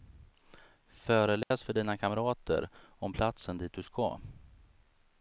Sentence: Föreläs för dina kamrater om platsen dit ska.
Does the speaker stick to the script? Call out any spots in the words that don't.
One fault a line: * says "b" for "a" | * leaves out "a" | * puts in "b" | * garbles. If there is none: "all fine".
* puts in "du"